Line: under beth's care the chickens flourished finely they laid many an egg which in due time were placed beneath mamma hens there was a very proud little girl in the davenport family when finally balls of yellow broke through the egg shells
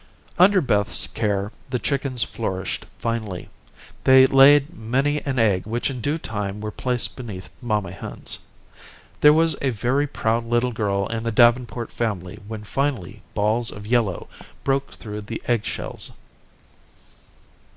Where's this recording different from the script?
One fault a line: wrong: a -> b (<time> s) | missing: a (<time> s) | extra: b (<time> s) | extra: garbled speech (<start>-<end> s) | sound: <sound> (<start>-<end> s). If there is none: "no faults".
no faults